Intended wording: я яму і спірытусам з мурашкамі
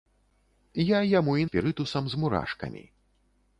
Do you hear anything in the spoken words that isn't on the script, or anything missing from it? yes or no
no